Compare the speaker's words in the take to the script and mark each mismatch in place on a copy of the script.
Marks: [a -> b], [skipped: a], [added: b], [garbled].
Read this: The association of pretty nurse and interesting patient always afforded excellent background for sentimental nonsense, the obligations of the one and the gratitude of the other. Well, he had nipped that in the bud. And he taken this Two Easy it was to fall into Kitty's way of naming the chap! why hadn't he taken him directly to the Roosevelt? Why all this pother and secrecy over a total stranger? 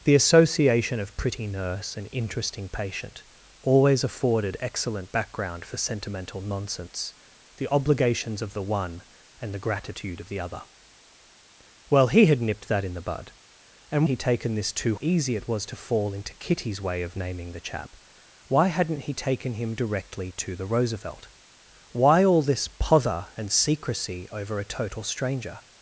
The association of pretty nurse and interesting patient always afforded excellent background for sentimental nonsense, the obligations of the one and the gratitude of the other. Well, he had nipped that in the bud. And he taken this Two Easy it was to fall into Kitty's way of naming the chap! why hadn't he taken him directly to the Roosevelt? Why all this pother and secrecy over a total stranger?